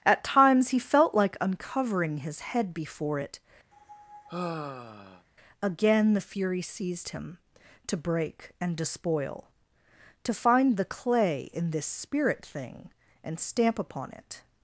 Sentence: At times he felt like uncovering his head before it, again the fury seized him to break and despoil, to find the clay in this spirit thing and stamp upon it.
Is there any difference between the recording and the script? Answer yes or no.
no